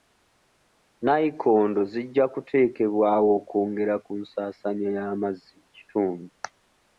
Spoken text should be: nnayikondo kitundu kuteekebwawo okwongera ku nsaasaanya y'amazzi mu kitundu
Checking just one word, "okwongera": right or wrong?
right